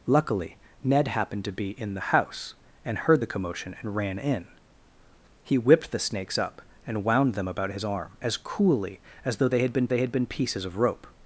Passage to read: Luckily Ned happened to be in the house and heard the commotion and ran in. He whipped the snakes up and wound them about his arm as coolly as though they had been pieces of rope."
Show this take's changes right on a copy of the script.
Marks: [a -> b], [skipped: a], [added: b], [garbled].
Luckily Ned happened to be in the house and heard the commotion and ran in. He whipped the snakes up and wound them about his arm as coolly as though they had been [added: they had been] pieces of rope."